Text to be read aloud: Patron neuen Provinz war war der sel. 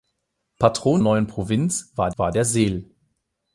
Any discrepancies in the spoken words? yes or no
no